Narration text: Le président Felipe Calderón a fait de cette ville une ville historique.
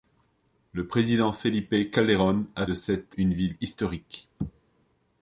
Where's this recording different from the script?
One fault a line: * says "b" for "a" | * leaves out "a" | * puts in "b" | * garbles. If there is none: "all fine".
* leaves out "fait"
* leaves out "ville"